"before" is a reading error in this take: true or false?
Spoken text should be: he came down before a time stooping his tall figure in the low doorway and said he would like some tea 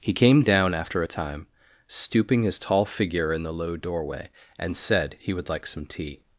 true